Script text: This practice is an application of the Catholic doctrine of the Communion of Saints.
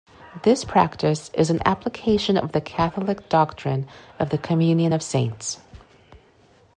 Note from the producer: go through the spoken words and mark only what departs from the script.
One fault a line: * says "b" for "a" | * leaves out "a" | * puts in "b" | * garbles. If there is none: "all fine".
all fine